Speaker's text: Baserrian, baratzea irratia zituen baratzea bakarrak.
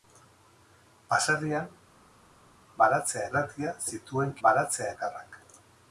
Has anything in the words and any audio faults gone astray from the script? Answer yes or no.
no